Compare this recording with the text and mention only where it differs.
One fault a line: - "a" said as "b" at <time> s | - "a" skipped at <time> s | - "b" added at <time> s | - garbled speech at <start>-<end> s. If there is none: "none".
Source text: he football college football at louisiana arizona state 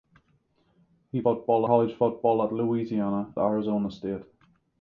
none